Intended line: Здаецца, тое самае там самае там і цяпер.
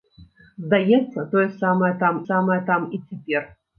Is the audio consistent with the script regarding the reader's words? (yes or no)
yes